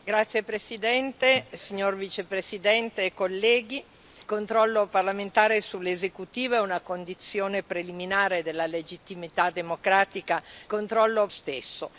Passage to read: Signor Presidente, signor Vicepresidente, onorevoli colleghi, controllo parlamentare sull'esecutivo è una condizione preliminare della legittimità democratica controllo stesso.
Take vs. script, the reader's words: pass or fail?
pass